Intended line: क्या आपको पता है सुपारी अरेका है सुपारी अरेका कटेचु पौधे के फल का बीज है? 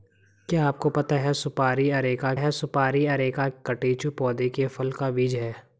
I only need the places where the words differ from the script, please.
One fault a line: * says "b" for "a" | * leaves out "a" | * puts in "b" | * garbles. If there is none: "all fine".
all fine